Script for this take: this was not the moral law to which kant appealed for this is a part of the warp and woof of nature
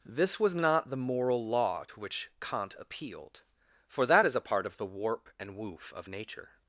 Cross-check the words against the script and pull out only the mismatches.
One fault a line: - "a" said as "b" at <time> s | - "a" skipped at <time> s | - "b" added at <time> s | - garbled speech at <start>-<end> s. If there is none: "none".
- "this" said as "that" at 4.1 s